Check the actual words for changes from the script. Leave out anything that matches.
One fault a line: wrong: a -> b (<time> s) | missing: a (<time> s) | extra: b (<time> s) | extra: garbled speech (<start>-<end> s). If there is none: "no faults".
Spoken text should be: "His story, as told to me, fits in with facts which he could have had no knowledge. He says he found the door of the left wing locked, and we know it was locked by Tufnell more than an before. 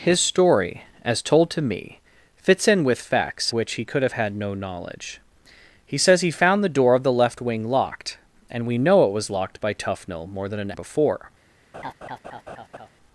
no faults